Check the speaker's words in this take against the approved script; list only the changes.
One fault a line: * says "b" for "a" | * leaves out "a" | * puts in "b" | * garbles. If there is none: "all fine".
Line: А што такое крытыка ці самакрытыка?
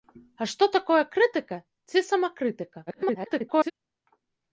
* garbles